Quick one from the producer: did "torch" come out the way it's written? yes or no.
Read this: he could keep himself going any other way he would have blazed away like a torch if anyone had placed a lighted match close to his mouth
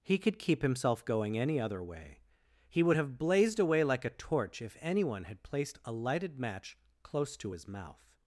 yes